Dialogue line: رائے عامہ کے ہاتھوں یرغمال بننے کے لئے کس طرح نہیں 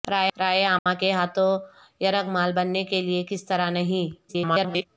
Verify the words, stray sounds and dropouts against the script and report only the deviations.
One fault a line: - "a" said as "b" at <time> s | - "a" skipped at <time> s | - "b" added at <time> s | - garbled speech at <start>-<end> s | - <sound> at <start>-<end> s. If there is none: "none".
- dropout at 0.8-0.9 s
- garbled speech at 4.3-4.9 s